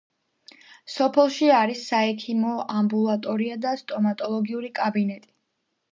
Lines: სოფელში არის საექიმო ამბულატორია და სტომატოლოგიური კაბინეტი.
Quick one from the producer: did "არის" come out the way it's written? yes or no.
yes